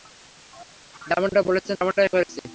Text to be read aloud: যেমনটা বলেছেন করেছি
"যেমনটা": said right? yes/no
yes